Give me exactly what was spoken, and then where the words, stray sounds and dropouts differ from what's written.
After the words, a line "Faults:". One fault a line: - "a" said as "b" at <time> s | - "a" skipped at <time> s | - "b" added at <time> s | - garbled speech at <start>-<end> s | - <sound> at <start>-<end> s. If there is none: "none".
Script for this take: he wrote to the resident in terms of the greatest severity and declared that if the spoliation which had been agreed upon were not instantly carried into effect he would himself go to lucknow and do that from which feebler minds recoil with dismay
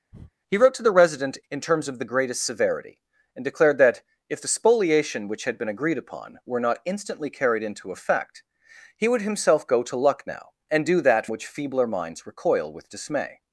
he wrote to the resident in terms of the greatest severity and declared that if the spoliation which had been agreed upon were not instantly carried into effect he would himself go to lucknow and do that which feebler minds recoil with dismay
Faults:
- breath at 0.1-0.3 s
- "from" skipped at 11.3 s